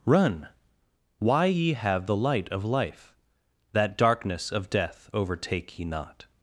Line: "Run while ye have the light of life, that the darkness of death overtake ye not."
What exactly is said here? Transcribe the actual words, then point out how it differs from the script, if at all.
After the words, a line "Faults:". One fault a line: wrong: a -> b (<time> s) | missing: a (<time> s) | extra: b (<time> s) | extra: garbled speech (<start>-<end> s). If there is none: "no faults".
"Run why ye have the light of life, that darkness of death overtake ye not."
Faults:
wrong: while -> why (1.2 s)
missing: the (4.0 s)